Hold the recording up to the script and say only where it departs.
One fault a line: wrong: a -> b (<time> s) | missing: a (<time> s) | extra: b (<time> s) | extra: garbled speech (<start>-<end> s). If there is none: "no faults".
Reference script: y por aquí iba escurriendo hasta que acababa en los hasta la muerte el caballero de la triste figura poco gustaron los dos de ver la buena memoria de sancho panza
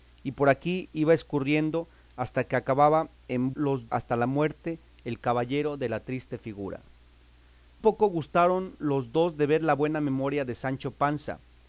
no faults